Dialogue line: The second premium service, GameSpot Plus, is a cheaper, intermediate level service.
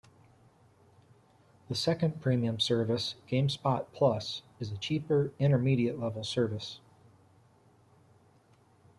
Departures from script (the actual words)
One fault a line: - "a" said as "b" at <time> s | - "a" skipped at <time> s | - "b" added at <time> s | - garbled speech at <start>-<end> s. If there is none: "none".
none